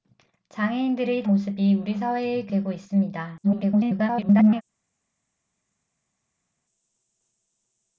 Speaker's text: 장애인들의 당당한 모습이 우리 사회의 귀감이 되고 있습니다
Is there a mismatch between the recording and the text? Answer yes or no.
yes